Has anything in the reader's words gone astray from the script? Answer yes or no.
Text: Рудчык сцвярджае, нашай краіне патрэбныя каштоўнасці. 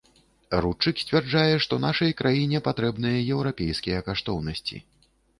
yes